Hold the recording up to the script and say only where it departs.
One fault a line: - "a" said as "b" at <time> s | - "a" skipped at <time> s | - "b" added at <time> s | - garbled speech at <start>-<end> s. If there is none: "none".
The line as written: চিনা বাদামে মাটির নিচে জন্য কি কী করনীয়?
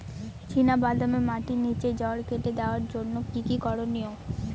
- "জড় কেটে দেওয়ার" added at 2.0 s